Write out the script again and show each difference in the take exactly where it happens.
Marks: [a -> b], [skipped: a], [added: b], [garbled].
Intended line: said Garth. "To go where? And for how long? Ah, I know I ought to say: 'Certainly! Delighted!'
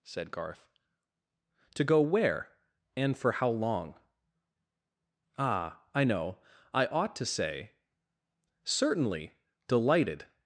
said Garth. "To go where? And for how long? Ah, I know I ought to say: 'Certainly! Delighted!'